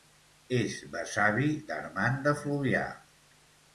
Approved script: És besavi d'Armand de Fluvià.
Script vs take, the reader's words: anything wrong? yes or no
no